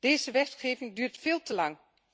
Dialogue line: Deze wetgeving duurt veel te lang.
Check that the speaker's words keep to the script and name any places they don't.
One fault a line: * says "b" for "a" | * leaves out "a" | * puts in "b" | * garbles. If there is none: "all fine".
all fine